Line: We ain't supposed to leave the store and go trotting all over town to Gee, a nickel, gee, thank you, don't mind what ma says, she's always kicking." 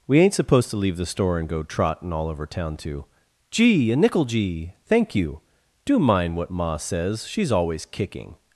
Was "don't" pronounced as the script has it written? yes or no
no